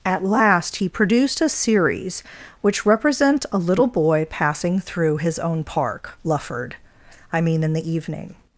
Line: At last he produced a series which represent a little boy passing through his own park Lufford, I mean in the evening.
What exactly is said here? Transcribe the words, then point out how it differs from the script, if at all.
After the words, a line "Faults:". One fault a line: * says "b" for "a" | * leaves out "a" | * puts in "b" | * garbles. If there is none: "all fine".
At last he produced a series which represent a little boy passing through his own park Lufford, I mean in the evening.
Faults:
all fine